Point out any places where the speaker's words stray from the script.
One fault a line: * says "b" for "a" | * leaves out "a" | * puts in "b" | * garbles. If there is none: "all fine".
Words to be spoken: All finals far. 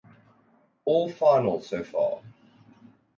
* puts in "so"